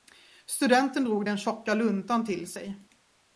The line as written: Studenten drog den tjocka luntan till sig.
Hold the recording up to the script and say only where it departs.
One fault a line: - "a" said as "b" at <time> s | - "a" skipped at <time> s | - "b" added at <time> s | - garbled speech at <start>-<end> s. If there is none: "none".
none